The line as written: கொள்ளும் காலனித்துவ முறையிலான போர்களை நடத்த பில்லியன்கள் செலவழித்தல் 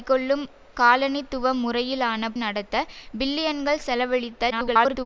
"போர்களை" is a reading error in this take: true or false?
true